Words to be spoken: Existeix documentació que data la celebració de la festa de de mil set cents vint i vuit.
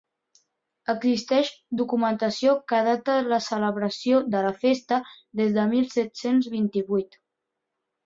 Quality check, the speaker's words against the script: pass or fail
fail